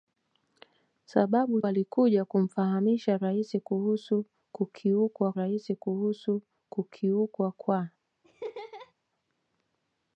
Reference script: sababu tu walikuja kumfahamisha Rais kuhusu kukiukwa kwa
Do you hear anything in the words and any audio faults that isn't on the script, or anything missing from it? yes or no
yes